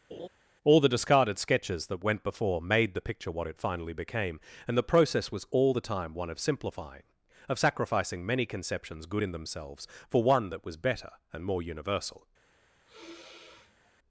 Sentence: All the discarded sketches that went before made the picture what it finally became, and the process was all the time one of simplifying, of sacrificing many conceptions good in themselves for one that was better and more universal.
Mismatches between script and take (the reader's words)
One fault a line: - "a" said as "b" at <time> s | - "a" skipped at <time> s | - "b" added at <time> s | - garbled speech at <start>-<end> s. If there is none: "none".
none